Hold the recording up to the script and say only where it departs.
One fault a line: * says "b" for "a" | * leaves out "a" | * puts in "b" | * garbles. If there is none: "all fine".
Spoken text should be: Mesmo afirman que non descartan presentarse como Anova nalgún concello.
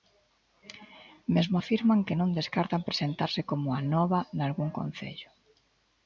all fine